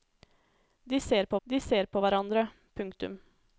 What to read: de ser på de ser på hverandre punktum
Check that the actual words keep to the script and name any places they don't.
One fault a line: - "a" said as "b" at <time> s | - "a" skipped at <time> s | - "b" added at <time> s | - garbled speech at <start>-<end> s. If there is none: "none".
none